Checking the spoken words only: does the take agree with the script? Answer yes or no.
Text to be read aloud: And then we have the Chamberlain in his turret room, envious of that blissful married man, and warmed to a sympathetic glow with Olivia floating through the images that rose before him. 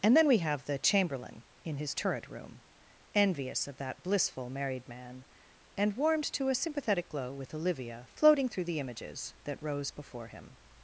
yes